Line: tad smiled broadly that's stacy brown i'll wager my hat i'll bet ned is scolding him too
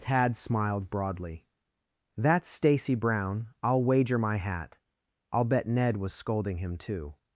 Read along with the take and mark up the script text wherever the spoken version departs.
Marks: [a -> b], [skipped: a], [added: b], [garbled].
tad smiled broadly that's stacy brown i'll wager my hat i'll bet ned [is -> was] scolding him too